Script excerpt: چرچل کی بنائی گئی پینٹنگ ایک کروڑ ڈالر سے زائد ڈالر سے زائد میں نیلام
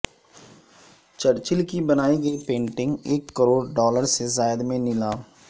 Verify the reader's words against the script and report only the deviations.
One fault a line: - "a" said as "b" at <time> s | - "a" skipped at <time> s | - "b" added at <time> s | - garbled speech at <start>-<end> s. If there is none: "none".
- "ڈالر سے زائد" skipped at 4.6 s